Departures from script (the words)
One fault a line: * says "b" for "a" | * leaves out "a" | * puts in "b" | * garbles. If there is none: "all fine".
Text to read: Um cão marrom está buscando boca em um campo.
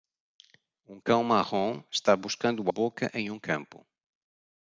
all fine